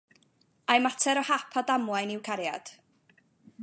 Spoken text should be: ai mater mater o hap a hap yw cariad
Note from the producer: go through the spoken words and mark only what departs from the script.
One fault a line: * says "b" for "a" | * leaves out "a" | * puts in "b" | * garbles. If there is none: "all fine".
* leaves out "mater"
* says "damwain" for "hap"